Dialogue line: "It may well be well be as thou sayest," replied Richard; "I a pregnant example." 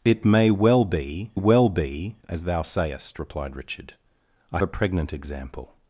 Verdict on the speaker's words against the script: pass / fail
pass